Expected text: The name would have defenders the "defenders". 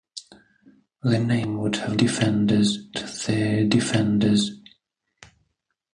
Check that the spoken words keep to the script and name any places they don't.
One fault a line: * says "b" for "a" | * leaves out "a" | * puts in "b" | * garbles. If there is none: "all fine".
all fine